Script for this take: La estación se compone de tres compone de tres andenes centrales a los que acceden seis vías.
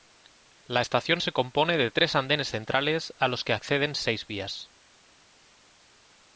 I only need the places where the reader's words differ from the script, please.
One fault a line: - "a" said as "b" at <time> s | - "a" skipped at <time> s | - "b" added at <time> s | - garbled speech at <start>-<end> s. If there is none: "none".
- "compone de tres" skipped at 2.2 s